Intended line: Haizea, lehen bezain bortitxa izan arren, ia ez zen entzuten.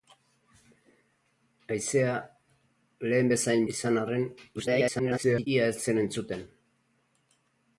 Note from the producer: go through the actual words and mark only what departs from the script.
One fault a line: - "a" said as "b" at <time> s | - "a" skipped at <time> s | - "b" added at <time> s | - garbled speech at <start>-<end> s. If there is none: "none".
- "bortitxa" skipped at 3.7 s
- garbled speech at 4.6-5.5 s